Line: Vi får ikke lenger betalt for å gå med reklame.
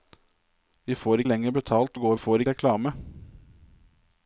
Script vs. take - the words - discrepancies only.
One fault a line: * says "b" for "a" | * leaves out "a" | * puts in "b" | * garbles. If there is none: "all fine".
* leaves out "ikke"
* leaves out "for"
* says "får" for "med"